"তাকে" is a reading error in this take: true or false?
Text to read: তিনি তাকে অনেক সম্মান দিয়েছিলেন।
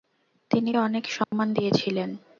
true